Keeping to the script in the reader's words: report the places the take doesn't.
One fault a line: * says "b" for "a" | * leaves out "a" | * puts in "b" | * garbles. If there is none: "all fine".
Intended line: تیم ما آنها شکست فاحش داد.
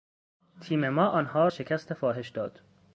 all fine